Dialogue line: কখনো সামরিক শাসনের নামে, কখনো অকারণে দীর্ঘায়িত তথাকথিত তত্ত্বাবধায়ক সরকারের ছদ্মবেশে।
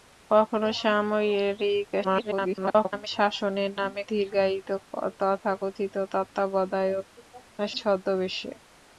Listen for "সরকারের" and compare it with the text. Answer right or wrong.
wrong